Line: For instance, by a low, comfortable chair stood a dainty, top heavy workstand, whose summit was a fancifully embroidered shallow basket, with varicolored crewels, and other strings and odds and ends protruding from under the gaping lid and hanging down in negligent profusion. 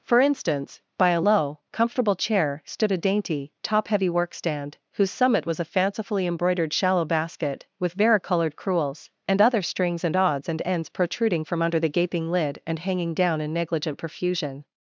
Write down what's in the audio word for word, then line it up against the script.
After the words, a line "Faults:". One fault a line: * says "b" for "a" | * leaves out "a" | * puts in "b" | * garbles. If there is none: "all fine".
For instance, by a low, comfortable chair stood a dainty, top heavy workstand, whose summit was a fancifully embroidered shallow basket, with varicolored crewels, and other strings and odds and ends protruding from under the gaping lid and hanging down in negligent profusion.
Faults:
all fine